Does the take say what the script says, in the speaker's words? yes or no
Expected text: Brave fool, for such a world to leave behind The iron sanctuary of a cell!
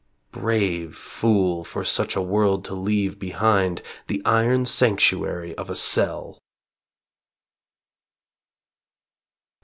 yes